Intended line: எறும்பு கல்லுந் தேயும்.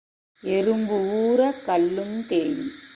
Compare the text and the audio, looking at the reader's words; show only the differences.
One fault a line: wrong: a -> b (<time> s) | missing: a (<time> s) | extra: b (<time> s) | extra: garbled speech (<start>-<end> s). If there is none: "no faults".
extra: ஊர (1.0 s)